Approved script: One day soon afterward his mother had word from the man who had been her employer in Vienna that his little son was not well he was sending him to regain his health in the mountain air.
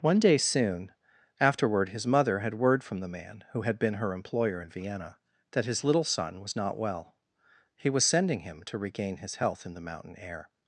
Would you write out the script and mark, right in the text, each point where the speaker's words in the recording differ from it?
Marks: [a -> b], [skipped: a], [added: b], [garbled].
One day soon afterward his mother had word from the man who had been her employer in Vienna that his little son was not well he was sending him to regain his health in the mountain air.